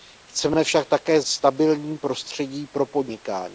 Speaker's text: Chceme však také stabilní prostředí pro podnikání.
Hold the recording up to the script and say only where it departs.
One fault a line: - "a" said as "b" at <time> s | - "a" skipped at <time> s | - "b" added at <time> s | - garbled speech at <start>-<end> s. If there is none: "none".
none